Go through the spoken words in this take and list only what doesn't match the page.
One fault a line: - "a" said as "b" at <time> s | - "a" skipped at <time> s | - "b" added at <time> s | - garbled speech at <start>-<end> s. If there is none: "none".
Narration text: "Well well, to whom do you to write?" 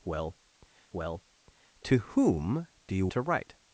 none